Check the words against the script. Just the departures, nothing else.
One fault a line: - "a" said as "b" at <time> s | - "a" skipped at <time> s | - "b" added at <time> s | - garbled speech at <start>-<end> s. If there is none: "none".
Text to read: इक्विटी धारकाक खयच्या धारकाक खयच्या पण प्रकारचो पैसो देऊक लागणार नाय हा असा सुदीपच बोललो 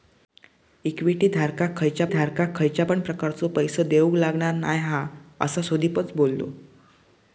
none